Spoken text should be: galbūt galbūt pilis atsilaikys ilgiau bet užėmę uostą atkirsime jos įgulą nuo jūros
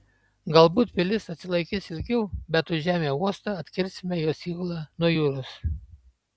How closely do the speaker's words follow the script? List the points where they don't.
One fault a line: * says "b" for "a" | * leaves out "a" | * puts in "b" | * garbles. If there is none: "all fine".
* leaves out "galbūt"